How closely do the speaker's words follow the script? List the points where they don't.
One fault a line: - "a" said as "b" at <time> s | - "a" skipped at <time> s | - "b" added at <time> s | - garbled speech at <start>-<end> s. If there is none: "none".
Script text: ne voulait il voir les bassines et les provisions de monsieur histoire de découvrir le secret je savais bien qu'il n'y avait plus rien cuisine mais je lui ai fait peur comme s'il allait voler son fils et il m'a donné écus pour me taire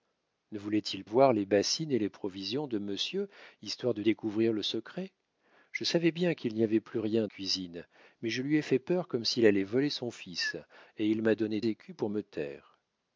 none